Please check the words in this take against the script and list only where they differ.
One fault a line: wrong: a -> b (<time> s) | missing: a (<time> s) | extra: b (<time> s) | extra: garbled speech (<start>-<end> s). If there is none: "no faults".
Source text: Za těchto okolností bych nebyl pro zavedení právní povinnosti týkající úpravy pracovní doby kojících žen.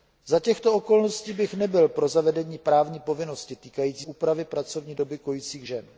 no faults